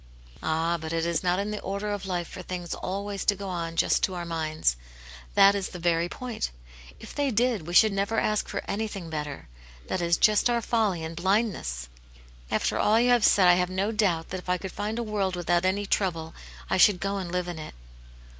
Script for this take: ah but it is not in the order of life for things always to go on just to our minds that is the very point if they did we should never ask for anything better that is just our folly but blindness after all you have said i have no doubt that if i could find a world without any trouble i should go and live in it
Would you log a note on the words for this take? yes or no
yes